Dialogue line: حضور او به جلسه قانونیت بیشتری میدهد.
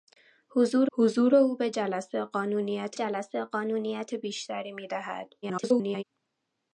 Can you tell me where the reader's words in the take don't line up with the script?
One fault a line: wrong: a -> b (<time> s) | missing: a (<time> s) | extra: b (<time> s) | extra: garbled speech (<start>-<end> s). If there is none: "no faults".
extra: حضور (0.9 s)
extra: جلسه قانونیت (2.9 s)
extra: garbled speech (5.4-6.0 s)